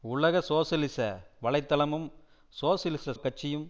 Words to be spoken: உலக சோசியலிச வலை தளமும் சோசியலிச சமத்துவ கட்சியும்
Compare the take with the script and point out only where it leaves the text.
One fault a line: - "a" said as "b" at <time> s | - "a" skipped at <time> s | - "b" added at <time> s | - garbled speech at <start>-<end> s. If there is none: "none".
- "சமத்துவ" skipped at 3.1 s